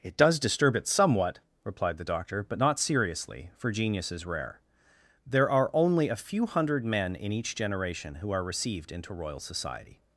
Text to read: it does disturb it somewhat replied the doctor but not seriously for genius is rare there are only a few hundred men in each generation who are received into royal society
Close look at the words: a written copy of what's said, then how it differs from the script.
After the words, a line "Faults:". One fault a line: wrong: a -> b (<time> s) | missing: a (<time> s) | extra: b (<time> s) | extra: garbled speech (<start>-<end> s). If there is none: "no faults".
it does disturb it somewhat replied the doctor but not seriously for genius is rare there are only a few hundred men in each generation who are received into royal society
Faults:
no faults